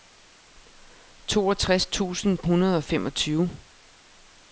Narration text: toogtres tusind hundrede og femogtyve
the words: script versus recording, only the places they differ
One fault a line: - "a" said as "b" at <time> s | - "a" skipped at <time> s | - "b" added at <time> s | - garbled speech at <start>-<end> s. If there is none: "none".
none